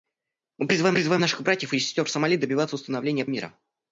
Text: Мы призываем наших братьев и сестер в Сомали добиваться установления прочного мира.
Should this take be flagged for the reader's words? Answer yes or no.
yes